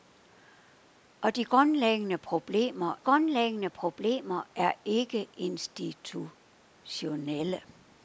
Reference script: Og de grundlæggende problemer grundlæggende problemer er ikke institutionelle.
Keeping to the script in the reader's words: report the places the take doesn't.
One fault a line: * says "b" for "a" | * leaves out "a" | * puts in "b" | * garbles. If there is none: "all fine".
all fine